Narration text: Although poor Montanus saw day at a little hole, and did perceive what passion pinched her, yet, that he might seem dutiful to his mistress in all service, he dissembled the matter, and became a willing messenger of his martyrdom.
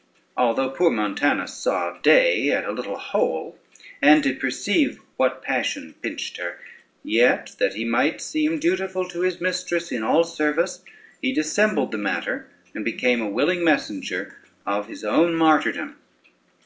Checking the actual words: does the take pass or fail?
fail